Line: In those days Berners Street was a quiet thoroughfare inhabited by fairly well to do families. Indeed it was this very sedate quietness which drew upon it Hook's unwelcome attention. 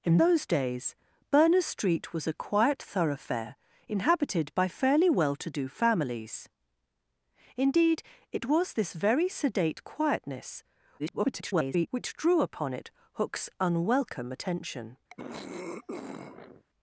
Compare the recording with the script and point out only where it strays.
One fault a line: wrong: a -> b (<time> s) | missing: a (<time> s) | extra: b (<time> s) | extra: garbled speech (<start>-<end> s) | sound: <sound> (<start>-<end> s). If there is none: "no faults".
extra: garbled speech (11.0-11.9 s)
sound: throat clearing (15.1-16.6 s)